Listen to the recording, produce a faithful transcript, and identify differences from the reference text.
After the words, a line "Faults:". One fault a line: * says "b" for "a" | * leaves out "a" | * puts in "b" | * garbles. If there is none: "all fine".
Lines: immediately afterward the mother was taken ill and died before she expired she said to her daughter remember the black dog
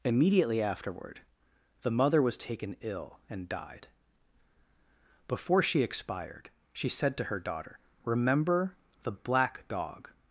immediately afterward the mother was taken ill and died before she expired she said to her daughter remember the black dog
Faults:
all fine